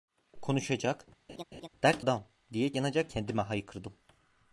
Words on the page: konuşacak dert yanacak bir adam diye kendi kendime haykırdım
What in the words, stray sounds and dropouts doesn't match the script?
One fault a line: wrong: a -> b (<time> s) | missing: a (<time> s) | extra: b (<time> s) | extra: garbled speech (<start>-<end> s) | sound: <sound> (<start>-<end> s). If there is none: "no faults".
sound: laugh (1.3-1.7 s)
missing: yanacak bir (2.0 s)
wrong: kendi -> yanacak (2.7 s)